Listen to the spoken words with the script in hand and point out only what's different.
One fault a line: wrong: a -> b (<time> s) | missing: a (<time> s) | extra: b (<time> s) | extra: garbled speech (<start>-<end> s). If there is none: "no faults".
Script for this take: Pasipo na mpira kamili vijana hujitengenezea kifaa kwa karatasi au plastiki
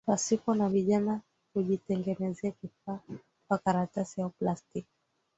missing: mpira kamili (0.7 s)